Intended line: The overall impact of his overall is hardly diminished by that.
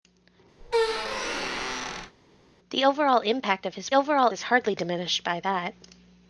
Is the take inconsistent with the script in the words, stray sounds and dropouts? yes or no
yes